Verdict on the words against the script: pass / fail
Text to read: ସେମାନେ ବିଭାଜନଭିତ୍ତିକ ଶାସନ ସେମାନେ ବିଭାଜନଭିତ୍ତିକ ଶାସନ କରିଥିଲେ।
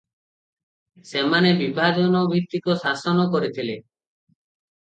fail